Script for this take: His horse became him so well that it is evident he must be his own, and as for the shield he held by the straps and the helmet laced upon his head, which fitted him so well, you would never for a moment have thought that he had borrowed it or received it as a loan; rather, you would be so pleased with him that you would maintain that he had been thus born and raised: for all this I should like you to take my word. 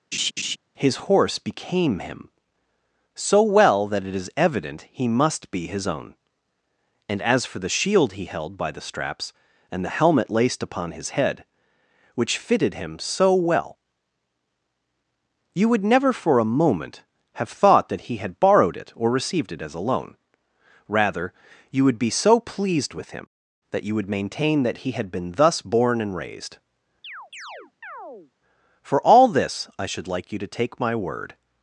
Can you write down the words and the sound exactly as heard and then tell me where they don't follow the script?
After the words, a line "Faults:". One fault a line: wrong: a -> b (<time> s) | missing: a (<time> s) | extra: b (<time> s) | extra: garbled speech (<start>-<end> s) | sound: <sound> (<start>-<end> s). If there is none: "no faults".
His horse became him so well that it is evident he must be his own, and as for the shield he held by the straps and the helmet laced upon his head, which fitted him so well, you would never for a moment have thought that he had borrowed it or received it as a loan; rather, you would be so pleased with him that you would maintain that he had been thus born and raised: for all this I should like you to take my word.
Faults:
sound: laugh (0.1-0.6 s)
sound: chirp (27.0-28.3 s)